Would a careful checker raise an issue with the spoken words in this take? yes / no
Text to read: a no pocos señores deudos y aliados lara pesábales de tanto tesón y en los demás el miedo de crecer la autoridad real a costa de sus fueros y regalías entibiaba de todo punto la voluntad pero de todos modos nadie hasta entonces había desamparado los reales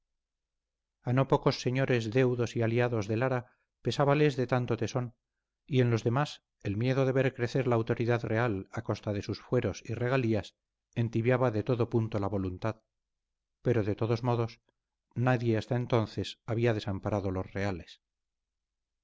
yes